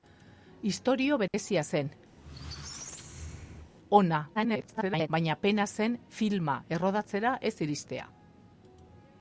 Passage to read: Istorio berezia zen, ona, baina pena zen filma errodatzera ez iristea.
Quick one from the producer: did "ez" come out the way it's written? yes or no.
yes